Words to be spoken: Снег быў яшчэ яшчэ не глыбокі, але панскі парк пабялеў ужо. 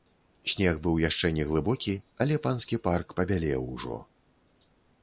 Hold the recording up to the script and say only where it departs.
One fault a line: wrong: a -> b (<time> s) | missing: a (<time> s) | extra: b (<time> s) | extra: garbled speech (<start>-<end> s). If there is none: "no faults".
missing: яшчэ (1.3 s)